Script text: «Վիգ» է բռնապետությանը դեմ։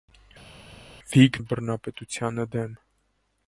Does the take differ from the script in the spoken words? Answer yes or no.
no